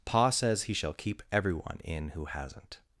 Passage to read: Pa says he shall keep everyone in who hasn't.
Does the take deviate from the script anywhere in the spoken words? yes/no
no